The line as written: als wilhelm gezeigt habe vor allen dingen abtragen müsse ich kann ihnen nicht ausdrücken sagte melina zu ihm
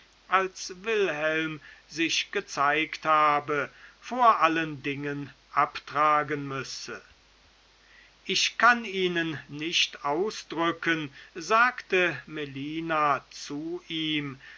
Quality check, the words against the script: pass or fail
fail